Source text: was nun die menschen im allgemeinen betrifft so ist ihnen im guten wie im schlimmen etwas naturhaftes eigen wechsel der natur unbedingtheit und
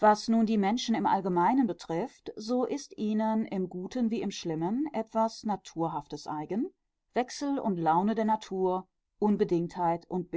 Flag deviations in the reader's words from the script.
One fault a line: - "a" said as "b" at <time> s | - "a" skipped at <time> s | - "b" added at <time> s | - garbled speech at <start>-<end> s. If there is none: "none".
- "und laune" added at 7.6 s